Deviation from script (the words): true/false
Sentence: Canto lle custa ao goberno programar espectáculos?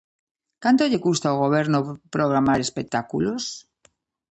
false